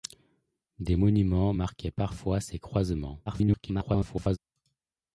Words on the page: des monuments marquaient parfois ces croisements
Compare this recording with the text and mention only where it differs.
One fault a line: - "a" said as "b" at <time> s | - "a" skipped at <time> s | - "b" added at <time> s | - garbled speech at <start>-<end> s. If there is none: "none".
- garbled speech at 3.3-4.4 s